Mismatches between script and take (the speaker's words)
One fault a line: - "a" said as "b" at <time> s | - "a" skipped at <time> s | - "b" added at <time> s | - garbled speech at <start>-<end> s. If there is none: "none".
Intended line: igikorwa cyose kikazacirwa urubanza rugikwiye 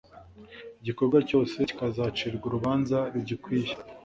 none